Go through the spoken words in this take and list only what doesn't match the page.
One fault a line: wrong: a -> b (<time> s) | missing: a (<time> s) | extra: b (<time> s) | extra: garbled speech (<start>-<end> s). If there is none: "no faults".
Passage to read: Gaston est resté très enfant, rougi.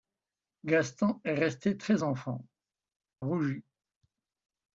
no faults